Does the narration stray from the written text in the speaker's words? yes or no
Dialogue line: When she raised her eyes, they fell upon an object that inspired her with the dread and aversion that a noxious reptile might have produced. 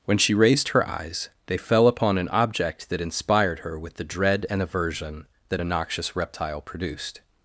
yes